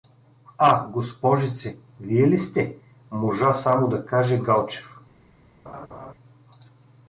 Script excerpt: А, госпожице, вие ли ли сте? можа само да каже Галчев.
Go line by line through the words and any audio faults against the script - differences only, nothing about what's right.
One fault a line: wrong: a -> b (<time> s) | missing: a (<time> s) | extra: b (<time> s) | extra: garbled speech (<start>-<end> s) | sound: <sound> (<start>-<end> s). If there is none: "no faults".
missing: ли (2.4 s)
sound: laugh (5.7-6.1 s)